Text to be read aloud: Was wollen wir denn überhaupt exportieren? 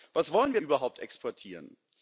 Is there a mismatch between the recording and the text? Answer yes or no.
yes